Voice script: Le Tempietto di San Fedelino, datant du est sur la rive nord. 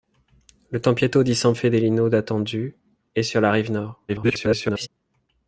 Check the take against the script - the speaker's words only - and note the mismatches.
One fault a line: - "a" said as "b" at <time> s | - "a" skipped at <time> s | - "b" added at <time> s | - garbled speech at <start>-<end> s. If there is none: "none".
- garbled speech at 4.1-4.9 s